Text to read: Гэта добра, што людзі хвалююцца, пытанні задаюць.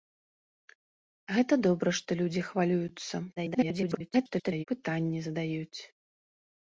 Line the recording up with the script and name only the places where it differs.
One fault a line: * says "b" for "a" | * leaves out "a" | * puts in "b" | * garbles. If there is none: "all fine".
* garbles